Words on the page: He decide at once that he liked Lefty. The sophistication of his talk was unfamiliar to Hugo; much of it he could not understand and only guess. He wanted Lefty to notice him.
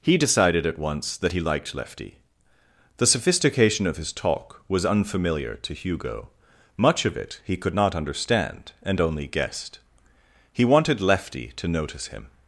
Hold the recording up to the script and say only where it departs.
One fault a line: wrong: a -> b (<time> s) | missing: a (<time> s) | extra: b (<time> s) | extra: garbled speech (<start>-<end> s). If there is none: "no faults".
wrong: decide -> decided (0.2 s)
wrong: guess -> guessed (9.3 s)